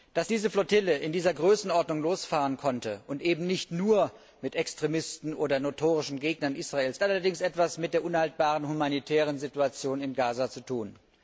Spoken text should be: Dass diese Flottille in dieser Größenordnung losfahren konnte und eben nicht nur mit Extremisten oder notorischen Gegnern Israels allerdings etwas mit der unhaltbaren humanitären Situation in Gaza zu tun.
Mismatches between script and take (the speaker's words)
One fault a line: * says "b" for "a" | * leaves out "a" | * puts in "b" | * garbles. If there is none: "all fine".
all fine